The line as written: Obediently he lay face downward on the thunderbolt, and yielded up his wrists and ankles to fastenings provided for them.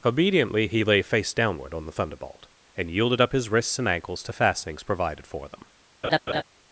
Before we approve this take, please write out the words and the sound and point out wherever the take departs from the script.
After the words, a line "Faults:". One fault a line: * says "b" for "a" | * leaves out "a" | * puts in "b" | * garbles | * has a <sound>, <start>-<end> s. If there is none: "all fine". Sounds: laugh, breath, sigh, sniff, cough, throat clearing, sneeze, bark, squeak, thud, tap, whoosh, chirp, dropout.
Obediently he lay face downward on the thunderbolt, and yielded up his wrists and ankles to fastenings provided for them.
Faults:
* has a laugh, 6.0-6.4 s